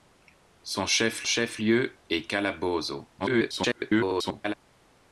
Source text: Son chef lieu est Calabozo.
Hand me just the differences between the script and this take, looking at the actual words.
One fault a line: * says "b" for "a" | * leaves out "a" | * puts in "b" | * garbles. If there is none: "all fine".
* puts in "chef"
* garbles